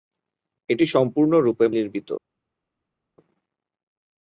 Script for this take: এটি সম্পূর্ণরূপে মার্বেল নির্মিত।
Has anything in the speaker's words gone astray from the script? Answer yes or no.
yes